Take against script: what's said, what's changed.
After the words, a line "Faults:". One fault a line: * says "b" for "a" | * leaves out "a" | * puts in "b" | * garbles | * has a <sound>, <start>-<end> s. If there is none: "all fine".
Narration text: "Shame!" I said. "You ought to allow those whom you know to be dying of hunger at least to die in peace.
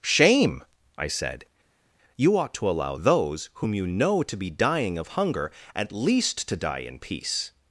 "Shame!" I said. "You ought to allow those whom you know to be dying of hunger at least to die in peace.
Faults:
all fine